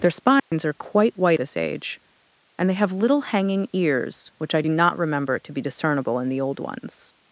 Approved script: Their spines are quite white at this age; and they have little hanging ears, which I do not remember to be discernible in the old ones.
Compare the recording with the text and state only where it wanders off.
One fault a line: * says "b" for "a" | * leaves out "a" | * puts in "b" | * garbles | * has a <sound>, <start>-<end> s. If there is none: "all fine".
* has a dropout, 0.4-0.5 s
* leaves out "at"